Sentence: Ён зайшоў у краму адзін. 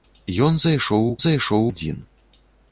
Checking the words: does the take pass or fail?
fail